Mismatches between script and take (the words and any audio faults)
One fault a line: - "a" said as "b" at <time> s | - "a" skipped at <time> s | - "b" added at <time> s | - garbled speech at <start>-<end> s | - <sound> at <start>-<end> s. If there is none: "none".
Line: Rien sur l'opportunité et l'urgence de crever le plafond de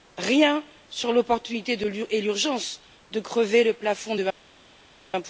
none